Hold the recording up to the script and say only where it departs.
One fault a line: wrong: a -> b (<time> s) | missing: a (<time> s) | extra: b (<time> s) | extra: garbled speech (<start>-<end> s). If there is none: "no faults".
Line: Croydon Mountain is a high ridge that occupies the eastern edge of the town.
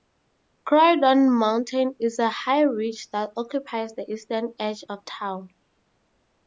missing: the (5.0 s)